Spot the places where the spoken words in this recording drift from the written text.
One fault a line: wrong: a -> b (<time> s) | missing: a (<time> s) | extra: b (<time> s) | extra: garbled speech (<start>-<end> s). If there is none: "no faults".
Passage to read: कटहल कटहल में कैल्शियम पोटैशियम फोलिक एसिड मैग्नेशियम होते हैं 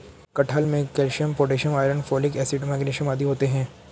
missing: कटहल (0.6 s)
extra: आयरन (1.8 s)
extra: आदि (3.1 s)